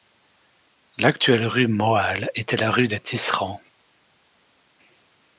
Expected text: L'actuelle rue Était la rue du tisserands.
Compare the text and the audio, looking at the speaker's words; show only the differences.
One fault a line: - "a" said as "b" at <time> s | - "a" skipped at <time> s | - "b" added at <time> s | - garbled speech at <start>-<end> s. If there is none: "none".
- "Moal" added at 1.7 s
- "du" said as "des" at 2.9 s